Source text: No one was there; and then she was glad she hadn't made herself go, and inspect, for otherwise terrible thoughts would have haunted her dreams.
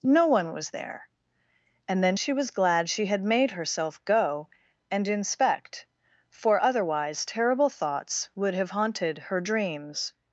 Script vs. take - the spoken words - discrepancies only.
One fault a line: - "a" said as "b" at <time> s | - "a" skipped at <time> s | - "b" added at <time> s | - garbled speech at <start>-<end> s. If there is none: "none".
- "hadn't" said as "had" at 3.0 s